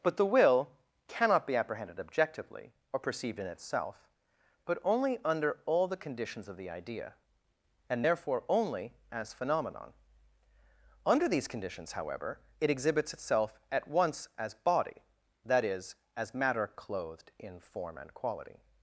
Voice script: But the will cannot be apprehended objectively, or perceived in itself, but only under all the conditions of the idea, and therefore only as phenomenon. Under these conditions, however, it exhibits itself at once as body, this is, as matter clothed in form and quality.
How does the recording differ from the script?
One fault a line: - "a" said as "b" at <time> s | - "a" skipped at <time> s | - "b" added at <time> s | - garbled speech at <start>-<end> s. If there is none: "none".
- "this" said as "that" at 15.4 s